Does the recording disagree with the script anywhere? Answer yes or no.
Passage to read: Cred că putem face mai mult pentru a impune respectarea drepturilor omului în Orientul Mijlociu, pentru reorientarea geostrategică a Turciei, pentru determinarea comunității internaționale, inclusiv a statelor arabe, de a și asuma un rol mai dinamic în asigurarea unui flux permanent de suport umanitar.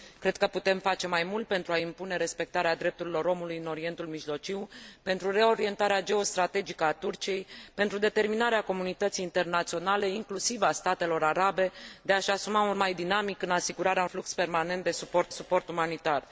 yes